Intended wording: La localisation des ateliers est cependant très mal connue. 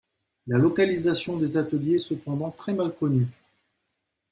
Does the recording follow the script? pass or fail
pass